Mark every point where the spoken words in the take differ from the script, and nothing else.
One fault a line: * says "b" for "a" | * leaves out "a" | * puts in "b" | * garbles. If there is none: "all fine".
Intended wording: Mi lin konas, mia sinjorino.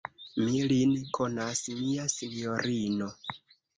all fine